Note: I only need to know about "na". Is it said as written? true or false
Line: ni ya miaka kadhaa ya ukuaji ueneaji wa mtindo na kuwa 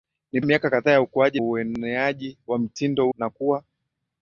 true